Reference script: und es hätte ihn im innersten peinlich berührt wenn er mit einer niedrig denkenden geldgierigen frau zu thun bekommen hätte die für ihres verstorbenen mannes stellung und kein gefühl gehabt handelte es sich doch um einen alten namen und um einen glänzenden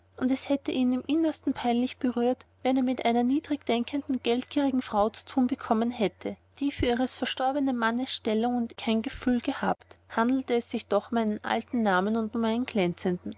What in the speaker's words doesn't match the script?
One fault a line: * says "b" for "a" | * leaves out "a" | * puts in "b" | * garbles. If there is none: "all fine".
all fine